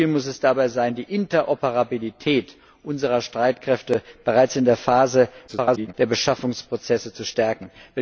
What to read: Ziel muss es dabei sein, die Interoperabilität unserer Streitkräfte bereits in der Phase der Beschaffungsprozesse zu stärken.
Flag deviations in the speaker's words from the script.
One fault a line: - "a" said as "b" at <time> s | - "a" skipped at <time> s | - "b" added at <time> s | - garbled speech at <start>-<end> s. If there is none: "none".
- garbled speech at 5.5-5.9 s